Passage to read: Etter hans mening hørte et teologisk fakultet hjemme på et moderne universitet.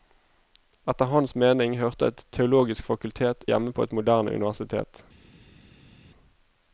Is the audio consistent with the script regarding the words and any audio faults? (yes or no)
yes